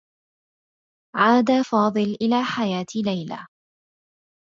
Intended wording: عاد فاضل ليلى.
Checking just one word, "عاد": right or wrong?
right